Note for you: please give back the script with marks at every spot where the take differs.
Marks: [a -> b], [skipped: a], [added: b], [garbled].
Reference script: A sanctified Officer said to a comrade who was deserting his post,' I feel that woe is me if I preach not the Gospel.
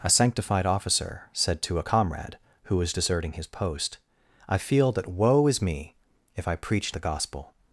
A sanctified Officer said to a comrade who was deserting his post,' I feel that woe is me if I preach [skipped: not] the Gospel.